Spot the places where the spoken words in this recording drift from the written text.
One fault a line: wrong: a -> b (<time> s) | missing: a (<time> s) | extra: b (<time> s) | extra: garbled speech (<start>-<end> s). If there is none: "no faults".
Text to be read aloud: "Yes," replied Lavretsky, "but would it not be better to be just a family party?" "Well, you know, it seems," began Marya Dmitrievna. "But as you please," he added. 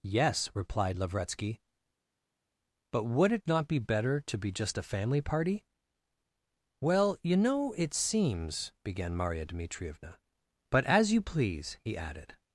no faults